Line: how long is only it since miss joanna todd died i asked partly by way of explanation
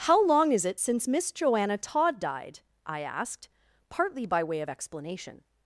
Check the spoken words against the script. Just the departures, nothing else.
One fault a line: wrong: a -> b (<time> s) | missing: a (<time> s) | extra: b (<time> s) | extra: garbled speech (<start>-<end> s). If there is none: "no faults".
missing: only (0.7 s)